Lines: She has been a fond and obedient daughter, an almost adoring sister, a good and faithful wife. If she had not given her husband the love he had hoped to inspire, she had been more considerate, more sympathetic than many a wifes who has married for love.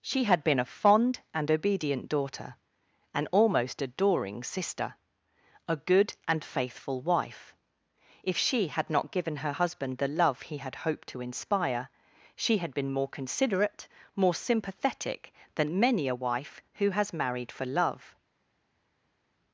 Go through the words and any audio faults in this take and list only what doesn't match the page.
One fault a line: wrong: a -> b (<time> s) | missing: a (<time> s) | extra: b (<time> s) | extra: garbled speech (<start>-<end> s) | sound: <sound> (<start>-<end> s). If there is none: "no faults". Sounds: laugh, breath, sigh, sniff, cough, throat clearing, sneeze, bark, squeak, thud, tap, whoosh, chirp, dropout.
wrong: has -> had (0.2 s)
wrong: wifes -> wife (16.2 s)